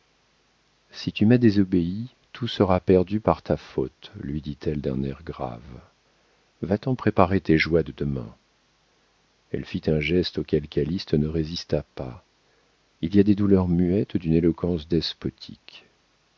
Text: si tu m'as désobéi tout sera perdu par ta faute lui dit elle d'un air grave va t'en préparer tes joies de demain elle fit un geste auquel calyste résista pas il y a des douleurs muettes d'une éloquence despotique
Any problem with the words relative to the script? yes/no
yes